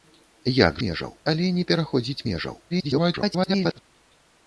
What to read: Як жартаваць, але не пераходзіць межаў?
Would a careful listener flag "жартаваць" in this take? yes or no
yes